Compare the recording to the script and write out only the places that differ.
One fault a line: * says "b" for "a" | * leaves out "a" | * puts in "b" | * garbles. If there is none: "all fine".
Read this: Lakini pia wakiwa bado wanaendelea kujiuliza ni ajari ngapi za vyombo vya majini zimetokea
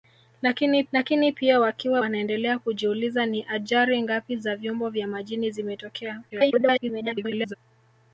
* puts in "lakini"
* leaves out "bado"
* garbles